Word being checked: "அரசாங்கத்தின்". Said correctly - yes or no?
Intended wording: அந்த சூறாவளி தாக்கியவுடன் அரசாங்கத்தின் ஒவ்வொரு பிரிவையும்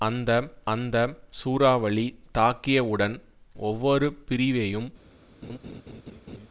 no